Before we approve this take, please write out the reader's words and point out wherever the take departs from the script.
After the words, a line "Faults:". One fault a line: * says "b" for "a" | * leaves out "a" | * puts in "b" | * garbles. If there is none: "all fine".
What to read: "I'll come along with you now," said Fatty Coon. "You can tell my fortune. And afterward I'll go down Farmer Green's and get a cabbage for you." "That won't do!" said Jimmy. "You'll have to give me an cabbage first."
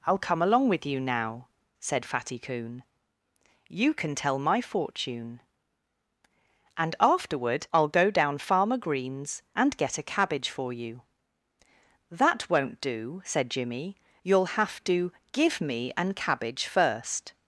"I'll come along with you now," said Fatty Coon. "You can tell my fortune. And afterward I'll go down Farmer Green's and get a cabbage for you." "That won't do!" said Jimmy. "You'll have to give me an cabbage first."
Faults:
all fine